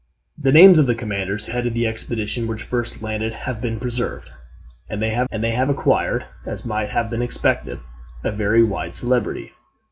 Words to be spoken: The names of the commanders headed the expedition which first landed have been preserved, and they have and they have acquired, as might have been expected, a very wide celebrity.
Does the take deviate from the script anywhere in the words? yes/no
no